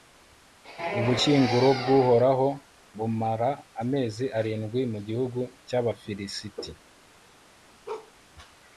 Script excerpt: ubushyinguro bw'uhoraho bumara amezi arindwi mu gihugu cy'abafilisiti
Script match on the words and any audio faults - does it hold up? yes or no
no